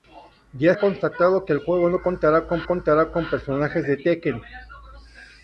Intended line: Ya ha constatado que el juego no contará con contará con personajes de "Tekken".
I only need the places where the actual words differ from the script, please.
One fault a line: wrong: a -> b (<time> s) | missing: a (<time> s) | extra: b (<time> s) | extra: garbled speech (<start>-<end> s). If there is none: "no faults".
no faults